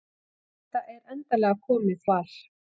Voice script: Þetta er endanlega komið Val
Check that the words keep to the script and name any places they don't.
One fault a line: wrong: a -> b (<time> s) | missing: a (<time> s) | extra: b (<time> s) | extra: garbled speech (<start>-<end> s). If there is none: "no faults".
no faults